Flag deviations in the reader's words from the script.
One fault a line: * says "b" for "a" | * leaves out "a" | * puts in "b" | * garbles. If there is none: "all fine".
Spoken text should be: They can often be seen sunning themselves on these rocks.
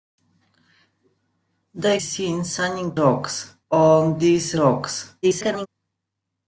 * leaves out "can often be"
* says "rocks" for "themselves"
* garbles